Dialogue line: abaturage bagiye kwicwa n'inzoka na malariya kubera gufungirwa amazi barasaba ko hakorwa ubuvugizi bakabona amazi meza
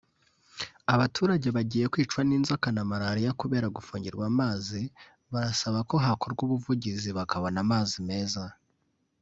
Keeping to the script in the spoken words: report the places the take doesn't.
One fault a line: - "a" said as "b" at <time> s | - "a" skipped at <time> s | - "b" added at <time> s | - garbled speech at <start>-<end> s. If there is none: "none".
none